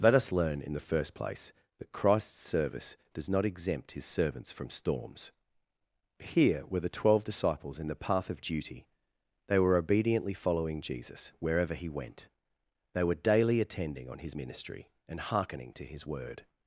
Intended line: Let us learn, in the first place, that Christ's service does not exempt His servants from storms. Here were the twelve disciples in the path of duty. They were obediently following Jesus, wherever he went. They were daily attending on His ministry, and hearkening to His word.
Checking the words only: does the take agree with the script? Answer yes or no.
yes